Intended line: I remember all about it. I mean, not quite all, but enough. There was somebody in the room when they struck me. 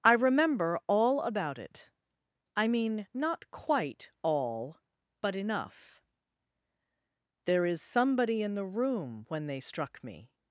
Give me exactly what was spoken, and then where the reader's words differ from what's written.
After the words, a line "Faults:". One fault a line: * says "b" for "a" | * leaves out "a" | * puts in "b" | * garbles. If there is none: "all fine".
I remember all about it. I mean, not quite all, but enough. There is somebody in the room when they struck me.
Faults:
* says "is" for "was"